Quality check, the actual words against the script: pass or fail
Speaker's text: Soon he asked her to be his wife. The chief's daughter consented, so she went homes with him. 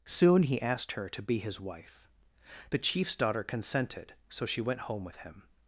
fail